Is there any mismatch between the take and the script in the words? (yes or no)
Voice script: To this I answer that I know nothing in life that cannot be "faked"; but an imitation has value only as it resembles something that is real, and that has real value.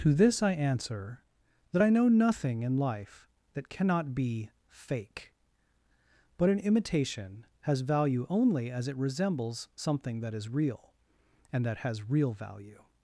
yes